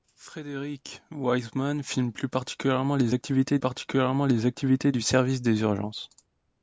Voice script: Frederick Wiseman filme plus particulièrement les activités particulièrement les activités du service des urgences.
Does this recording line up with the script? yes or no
yes